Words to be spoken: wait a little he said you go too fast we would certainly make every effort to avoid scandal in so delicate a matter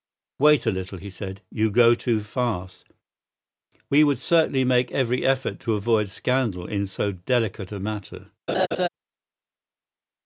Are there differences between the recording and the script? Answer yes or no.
no